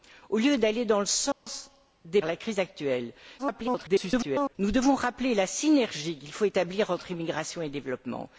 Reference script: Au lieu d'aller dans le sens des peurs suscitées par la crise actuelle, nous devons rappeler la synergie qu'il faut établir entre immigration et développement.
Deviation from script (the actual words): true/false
true